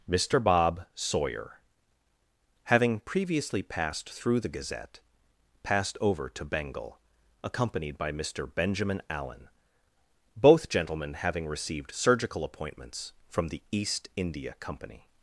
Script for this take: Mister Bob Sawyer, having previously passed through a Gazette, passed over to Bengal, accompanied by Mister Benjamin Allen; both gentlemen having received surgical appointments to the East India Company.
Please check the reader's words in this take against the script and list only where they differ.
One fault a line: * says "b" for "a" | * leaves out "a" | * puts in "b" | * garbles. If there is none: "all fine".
* says "the" for "a"
* says "from" for "to"